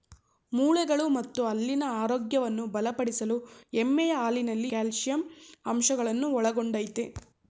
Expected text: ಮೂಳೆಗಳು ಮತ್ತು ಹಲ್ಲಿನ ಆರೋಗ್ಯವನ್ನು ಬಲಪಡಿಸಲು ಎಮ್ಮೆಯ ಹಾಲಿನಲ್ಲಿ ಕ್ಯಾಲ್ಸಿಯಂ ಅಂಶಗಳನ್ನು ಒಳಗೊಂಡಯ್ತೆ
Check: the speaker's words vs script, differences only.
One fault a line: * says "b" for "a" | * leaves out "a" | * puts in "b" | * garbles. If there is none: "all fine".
all fine